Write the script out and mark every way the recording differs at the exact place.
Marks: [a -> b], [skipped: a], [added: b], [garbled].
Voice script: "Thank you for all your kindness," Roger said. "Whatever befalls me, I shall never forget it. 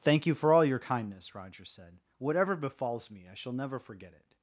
"Thank you for all your kindness," Roger said. "Whatever befalls me, I shall never forget it.